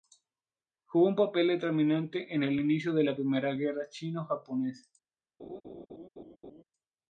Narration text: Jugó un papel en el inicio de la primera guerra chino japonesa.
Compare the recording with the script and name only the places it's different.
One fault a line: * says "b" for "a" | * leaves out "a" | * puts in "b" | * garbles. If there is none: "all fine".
* puts in "determinante"